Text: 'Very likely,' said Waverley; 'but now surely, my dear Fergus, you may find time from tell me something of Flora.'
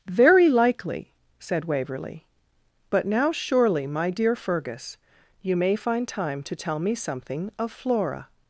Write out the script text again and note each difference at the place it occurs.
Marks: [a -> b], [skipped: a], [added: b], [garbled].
'Very likely,' said Waverley; 'but now surely, my dear Fergus, you may find time [from -> to] tell me something of Flora.'